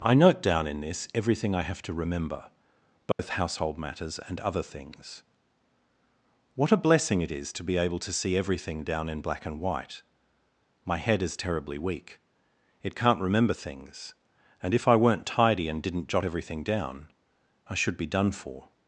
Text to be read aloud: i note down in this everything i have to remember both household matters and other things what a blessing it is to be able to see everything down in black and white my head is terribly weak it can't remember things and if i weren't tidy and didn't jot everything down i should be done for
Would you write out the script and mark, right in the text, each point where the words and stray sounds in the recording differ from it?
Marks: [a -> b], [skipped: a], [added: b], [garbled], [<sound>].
i note down in this everything i have to remember both [dropout] household matters and other things what a blessing it is to be able to see everything down in black and white my head is terribly weak it can't remember things and if i weren't tidy and didn't jot everything down i should be done for